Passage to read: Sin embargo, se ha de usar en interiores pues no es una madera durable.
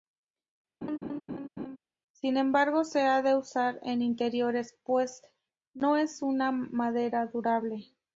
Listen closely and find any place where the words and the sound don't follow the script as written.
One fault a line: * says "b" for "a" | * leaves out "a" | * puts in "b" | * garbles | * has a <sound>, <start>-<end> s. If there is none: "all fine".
* has a laugh, 0.8-1.8 s